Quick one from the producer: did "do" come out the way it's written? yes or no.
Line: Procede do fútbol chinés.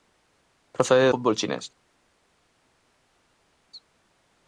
no